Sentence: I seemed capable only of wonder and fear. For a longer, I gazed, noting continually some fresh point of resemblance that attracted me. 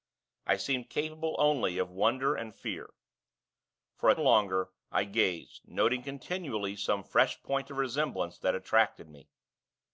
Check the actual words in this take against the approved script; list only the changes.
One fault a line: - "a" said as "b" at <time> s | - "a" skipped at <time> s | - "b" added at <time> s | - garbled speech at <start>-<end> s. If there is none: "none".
none